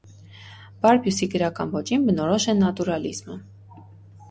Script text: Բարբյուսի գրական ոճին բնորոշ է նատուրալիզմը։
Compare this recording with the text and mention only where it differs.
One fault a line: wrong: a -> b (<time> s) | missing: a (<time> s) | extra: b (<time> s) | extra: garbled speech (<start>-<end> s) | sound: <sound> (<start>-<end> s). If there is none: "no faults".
no faults